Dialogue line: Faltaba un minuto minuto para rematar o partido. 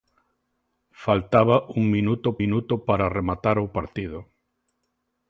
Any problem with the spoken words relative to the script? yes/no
no